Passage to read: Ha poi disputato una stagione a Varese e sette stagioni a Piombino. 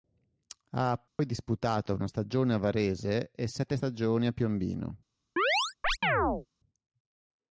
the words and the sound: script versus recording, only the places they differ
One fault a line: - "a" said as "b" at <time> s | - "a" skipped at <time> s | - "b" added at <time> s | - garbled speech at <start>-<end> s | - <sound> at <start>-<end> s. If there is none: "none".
- dropout at 1.1-1.2 s
- chirp at 5.4-6.5 s